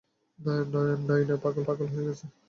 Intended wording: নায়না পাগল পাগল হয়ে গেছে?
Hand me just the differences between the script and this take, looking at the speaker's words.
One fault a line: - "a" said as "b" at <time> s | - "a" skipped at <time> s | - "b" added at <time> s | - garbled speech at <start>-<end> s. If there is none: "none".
none